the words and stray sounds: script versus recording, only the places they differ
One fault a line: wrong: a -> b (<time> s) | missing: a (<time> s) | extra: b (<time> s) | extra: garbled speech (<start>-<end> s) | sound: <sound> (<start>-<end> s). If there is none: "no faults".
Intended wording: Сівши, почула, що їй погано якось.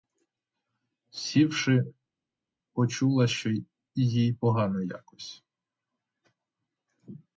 no faults